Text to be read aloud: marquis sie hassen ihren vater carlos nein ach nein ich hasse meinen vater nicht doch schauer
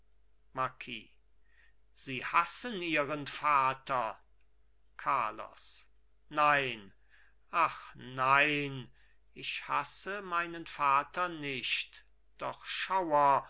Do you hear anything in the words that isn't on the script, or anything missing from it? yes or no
no